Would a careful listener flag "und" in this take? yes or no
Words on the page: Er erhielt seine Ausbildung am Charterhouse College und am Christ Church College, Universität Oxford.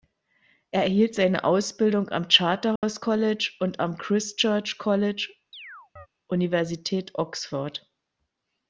no